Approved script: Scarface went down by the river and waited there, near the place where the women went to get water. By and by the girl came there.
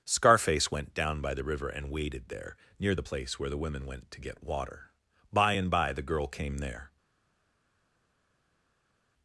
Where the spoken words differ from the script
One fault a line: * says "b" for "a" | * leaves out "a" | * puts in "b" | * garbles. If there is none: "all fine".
all fine